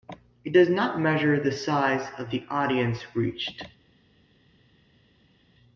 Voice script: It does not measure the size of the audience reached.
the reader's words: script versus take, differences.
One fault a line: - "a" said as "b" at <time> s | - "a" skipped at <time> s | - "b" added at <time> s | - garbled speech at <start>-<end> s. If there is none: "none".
none